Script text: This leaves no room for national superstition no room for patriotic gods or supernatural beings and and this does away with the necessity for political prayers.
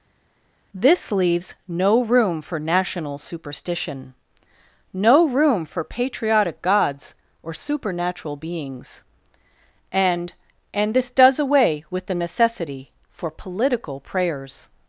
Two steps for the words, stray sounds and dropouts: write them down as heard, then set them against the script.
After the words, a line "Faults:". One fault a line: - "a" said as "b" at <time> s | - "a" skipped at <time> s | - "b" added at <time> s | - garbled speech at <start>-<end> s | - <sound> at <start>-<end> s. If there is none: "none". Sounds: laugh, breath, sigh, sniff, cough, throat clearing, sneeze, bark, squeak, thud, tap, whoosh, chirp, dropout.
This leaves no room for national superstition no room for patriotic gods or supernatural beings and and this does away with the necessity for political prayers.
Faults:
none